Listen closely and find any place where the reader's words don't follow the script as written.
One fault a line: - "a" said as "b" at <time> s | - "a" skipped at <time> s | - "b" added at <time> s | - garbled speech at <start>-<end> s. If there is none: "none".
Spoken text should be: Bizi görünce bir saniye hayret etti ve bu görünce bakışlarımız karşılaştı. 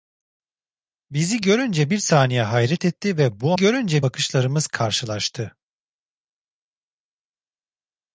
none